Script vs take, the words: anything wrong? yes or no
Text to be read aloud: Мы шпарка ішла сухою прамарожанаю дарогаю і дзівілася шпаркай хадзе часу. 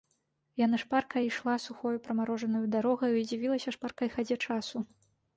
yes